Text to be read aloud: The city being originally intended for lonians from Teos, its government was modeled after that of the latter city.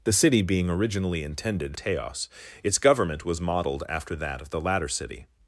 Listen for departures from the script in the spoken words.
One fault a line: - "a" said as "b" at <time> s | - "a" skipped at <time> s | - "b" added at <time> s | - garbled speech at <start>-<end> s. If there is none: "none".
- "for lonians from" skipped at 1.8 s